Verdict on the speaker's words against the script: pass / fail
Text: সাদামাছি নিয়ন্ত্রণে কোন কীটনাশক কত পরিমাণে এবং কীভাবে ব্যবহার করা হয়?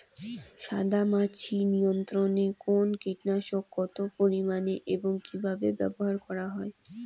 pass